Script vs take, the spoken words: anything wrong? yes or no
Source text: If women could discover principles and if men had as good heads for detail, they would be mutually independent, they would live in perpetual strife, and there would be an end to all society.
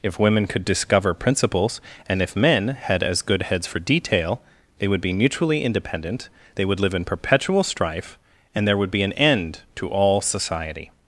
no